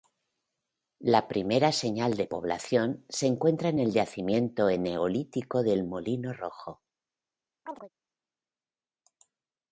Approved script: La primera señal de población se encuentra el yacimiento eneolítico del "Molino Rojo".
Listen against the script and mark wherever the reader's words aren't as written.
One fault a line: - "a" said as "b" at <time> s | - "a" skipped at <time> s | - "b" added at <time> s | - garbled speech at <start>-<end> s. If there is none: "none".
- "en" added at 3.7 s